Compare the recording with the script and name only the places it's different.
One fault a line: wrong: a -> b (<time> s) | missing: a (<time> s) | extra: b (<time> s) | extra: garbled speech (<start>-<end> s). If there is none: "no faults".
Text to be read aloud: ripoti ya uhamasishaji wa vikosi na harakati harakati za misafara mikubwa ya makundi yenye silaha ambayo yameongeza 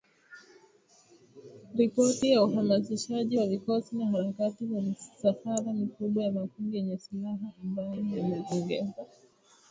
missing: harakati (4.7 s)